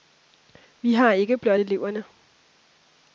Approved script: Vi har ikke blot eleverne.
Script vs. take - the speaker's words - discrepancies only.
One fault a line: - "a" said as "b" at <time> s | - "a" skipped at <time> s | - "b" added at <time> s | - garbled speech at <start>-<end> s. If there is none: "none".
none